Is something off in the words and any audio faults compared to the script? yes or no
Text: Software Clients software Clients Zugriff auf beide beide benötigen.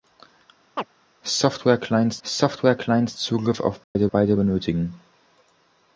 yes